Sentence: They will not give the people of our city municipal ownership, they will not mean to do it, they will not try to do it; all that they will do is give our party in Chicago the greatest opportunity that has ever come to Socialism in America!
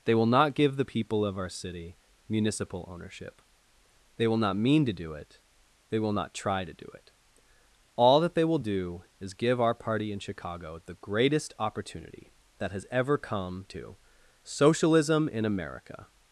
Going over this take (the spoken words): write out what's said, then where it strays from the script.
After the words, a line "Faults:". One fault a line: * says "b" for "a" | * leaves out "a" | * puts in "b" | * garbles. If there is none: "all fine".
They will not give the people of our city municipal ownership, they will not mean to do it, they will not try to do it; all that they will do is give our party in Chicago the greatest opportunity that has ever come to Socialism in America!
Faults:
all fine